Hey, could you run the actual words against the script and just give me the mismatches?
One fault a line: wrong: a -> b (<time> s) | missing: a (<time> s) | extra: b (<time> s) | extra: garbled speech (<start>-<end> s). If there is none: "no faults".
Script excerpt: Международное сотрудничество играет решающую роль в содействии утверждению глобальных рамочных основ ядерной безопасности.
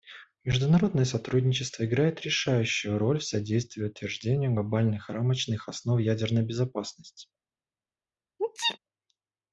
no faults